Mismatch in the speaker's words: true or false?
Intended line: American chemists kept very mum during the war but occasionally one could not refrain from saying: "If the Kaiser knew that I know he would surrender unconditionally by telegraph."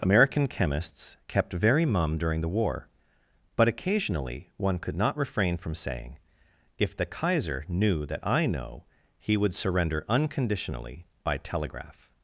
false